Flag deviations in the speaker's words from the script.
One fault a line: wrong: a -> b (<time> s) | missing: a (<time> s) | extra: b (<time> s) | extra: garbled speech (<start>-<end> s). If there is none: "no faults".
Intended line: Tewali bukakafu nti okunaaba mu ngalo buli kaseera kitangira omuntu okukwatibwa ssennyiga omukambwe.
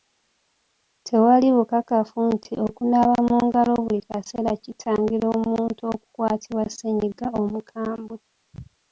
no faults